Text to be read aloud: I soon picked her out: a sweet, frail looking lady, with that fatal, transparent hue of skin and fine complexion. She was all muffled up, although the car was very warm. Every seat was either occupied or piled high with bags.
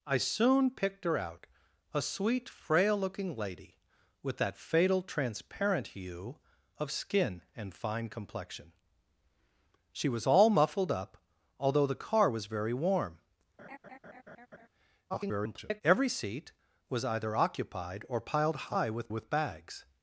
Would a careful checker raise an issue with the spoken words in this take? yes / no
yes